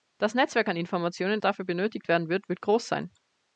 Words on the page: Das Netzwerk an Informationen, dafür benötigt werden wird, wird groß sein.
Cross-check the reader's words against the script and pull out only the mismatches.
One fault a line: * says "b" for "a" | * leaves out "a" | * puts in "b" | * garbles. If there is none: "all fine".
all fine